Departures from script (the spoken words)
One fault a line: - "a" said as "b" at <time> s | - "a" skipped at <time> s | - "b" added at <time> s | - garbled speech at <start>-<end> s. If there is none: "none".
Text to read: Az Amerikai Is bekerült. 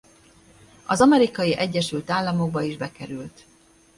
- "Egyesült Államokba" added at 1.6 s